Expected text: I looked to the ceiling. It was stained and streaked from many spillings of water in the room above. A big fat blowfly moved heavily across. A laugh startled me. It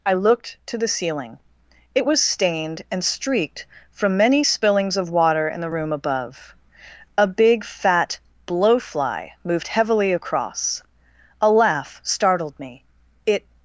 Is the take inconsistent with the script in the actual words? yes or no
no